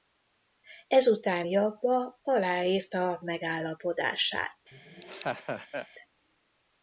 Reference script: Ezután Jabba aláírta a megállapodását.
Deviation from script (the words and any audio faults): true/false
true